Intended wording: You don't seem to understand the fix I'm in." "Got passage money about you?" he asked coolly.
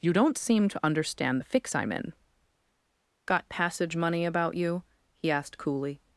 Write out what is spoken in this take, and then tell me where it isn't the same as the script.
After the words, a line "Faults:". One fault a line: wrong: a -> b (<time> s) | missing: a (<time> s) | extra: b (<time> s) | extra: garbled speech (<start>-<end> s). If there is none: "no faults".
You don't seem to understand the fix I'm in." "Got passage money about you?" he asked coolly.
Faults:
no faults